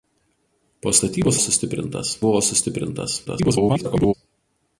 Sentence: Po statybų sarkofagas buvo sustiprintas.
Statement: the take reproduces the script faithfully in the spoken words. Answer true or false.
false